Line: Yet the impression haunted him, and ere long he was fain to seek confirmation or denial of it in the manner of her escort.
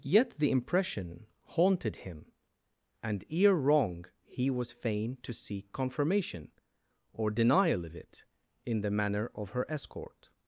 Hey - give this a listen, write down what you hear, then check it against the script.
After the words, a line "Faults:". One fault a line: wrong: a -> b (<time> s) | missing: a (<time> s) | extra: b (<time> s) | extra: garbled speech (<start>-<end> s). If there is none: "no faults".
Yet the impression haunted him, and ere wrong he was fain to seek confirmation or denial of it in the manner of her escort.
Faults:
wrong: long -> wrong (3.5 s)